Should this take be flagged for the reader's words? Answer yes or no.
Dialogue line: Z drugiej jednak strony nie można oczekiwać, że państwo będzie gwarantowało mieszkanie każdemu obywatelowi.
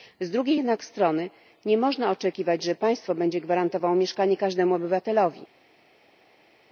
no